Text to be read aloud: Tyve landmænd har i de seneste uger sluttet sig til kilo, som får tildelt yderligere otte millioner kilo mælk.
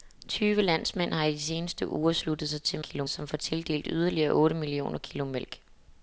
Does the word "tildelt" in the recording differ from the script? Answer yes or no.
no